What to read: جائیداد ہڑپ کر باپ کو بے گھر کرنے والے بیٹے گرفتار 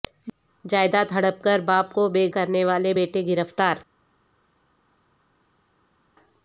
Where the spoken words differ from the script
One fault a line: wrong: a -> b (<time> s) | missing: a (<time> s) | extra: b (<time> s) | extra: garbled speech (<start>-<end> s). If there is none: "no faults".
missing: گھر (2.3 s)